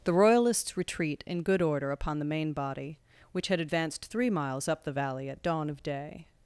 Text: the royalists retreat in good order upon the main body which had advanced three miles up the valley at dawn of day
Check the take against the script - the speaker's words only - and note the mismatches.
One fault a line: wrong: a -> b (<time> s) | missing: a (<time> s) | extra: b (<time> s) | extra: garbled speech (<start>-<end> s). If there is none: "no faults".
no faults